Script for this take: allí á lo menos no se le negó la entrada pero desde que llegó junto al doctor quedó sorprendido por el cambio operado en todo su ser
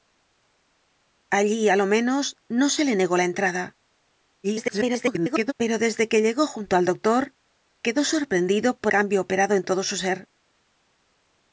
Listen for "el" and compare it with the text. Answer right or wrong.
wrong